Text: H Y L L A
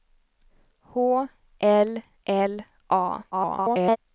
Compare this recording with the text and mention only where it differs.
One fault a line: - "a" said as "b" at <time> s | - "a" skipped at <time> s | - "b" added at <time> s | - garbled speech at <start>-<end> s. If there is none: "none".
- "Y" skipped at 1.3 s
- garbled speech at 3.3-4.0 s